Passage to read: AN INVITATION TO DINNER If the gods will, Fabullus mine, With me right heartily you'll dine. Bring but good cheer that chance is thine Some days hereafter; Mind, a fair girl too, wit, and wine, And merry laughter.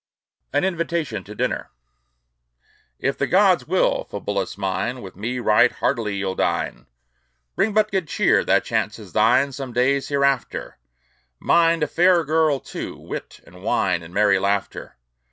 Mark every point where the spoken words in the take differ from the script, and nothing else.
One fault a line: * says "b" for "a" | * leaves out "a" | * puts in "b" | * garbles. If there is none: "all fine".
all fine